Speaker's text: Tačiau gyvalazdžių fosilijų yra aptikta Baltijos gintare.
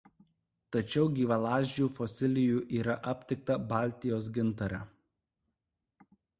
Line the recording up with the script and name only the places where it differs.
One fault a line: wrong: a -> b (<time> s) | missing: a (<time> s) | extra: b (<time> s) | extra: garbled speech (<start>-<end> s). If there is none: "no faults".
no faults